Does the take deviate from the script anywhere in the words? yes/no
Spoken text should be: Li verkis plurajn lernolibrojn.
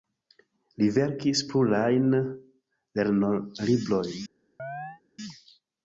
no